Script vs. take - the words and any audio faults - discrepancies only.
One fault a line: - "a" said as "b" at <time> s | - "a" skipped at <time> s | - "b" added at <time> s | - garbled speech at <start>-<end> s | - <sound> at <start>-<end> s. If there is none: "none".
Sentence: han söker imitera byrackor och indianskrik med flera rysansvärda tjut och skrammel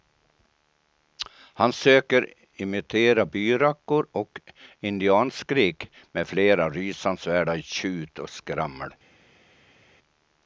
none